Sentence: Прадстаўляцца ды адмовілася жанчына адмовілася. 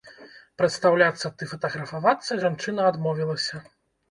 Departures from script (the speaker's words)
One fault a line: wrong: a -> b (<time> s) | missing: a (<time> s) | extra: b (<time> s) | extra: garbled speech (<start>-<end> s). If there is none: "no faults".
wrong: адмовілася -> фатаграфавацца (1.5 s)